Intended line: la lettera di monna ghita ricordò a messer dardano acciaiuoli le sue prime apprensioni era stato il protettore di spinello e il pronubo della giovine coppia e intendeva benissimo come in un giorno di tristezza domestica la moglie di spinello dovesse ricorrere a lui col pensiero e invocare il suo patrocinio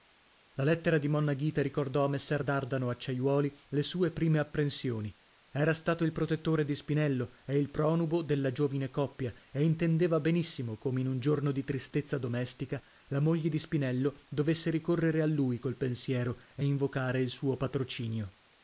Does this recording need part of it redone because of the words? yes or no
no